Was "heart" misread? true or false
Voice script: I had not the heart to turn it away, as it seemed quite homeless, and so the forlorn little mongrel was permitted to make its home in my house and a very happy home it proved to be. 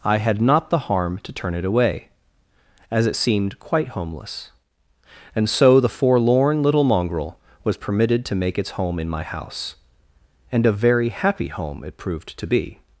true